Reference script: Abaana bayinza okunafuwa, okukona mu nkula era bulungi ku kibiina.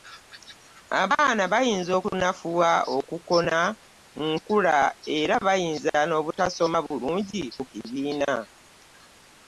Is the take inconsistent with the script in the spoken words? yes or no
yes